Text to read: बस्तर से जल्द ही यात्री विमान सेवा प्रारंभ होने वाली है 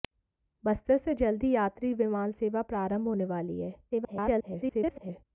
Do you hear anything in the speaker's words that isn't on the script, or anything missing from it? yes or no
yes